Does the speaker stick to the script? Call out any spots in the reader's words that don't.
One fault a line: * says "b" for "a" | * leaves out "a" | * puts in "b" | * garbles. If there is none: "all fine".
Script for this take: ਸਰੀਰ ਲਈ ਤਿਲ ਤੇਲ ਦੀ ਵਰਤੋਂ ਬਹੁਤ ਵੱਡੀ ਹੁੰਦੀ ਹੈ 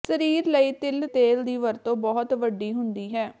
all fine